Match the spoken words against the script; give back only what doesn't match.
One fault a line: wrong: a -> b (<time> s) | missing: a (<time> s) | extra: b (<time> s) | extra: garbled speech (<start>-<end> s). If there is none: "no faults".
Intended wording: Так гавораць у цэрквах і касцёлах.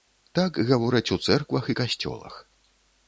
no faults